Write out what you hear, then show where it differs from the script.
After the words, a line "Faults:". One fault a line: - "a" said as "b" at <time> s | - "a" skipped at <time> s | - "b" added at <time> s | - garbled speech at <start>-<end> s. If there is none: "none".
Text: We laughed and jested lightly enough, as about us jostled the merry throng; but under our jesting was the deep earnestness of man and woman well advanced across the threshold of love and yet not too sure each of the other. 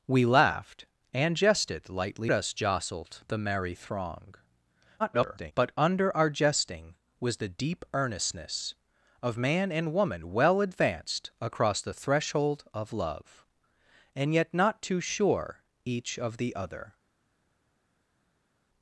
We laughed and jested lightly us jostled the merry throng; [garbled] but under our jesting was the deep earnestness of man and woman well advanced across the threshold of love and yet not too sure each of the other.
Faults:
- "enough as about" skipped at 2.3 s
- garbled speech at 5.0-5.5 s